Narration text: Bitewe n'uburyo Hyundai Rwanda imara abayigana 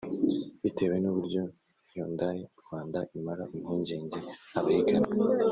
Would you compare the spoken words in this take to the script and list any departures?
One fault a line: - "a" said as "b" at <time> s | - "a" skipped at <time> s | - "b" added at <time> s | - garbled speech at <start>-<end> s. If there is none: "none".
- "impungenge" added at 3.6 s